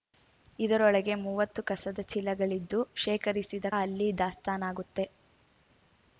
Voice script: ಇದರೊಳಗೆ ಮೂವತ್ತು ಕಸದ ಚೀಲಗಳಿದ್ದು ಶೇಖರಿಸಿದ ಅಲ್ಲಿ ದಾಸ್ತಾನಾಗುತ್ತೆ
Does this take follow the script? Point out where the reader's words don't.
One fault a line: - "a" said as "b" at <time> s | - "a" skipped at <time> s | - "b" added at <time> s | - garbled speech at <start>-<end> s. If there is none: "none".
none